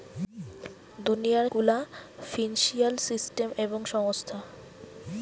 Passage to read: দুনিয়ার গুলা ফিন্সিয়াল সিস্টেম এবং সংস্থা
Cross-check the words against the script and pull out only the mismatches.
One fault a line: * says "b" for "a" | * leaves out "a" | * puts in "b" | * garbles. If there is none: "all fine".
all fine